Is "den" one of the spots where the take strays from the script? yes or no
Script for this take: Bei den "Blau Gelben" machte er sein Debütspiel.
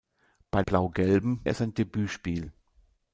yes